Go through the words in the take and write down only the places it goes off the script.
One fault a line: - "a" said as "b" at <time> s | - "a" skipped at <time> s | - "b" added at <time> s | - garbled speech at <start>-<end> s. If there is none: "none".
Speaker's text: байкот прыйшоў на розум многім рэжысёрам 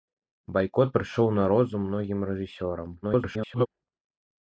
- garbled speech at 3.0-3.7 s